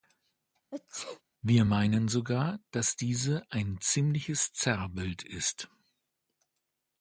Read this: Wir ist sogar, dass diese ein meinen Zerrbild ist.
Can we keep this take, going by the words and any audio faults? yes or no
no